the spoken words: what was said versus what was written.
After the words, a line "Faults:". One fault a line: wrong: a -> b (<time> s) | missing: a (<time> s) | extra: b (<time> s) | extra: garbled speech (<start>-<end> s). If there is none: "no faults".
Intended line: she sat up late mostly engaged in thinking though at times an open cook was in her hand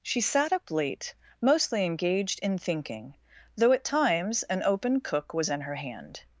she sat up late mostly engaged in thinking though at times an open cook was in her hand
Faults:
no faults